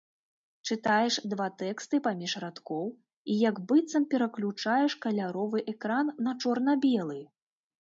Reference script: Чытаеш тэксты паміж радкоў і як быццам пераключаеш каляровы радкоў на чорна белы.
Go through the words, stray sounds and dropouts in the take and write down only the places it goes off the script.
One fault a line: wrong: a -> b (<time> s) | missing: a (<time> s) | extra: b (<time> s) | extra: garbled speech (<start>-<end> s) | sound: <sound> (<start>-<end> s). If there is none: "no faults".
extra: два (1.3 s)
wrong: радкоў -> экран (5.7 s)